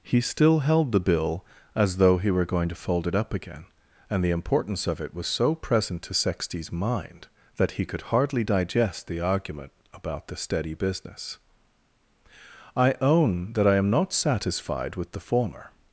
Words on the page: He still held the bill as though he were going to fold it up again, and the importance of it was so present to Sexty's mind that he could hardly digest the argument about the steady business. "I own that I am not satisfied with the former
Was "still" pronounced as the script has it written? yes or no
yes